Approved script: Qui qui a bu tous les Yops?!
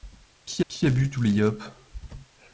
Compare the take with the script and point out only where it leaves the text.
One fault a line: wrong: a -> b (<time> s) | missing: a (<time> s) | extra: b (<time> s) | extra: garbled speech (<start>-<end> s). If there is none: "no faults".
no faults